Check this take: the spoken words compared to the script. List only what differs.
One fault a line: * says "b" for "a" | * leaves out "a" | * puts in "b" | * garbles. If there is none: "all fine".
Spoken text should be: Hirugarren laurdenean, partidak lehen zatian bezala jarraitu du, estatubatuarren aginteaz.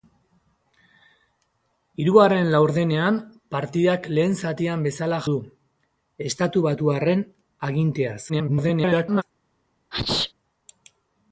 * leaves out "jarraitu"
* garbles